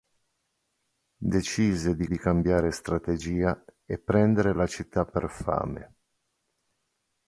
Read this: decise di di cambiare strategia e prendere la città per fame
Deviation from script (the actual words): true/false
false